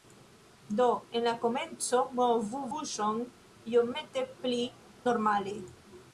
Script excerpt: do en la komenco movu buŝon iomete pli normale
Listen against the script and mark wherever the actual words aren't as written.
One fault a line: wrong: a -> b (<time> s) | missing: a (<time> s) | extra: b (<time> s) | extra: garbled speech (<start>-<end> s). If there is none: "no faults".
no faults